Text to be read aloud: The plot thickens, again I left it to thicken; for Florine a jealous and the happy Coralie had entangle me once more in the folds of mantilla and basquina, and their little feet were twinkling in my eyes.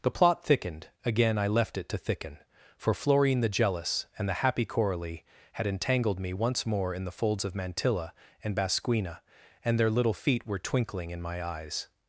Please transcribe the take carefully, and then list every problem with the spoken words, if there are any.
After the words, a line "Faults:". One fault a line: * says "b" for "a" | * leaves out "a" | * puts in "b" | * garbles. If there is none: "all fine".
The plot thickened, again I left it to thicken; for Florine the jealous and the happy Coralie had entangled me once more in the folds of mantilla and basquina, and their little feet were twinkling in my eyes.
Faults:
* says "thickened" for "thickens"
* says "the" for "a"
* says "entangled" for "entangle"